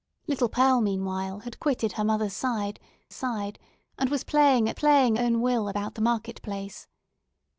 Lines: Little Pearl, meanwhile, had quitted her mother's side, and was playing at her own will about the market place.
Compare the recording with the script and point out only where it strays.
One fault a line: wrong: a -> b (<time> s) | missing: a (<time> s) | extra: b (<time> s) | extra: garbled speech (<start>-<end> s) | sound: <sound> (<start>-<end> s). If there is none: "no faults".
extra: side (3.1 s)
wrong: her -> playing (4.7 s)